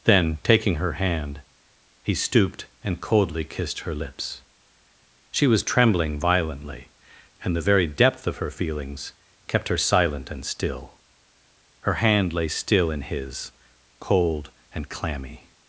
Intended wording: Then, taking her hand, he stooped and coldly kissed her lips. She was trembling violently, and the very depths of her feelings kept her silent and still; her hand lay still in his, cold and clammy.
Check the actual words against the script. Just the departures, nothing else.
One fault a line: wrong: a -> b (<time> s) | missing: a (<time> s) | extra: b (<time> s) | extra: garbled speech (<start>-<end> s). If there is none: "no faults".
wrong: depths -> depth (7.9 s)